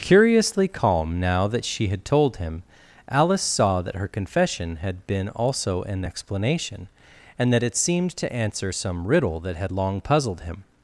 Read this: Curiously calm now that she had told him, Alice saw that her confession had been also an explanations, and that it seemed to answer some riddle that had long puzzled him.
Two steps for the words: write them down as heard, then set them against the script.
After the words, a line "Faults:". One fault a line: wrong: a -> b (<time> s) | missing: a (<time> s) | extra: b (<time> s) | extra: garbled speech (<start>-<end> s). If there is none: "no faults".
Curiously calm now that she had told him, Alice saw that her confession had been also an explanation, and that it seemed to answer some riddle that had long puzzled him.
Faults:
wrong: explanations -> explanation (6.0 s)